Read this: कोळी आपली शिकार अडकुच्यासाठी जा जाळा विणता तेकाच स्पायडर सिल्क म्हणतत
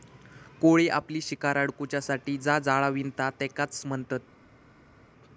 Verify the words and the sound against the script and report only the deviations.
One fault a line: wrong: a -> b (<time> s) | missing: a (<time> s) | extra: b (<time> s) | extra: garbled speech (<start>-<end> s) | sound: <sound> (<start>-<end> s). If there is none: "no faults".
missing: स्पायडर सिल्क (3.8 s)